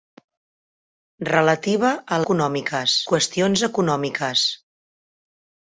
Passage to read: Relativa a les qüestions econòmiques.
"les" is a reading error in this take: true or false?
true